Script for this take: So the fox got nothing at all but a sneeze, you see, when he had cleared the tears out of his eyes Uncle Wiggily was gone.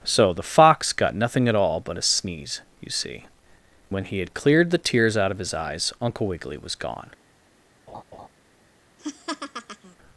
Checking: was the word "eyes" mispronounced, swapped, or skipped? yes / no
no